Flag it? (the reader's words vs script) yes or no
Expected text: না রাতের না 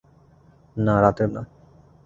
no